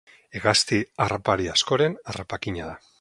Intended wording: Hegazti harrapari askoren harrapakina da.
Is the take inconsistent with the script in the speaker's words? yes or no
no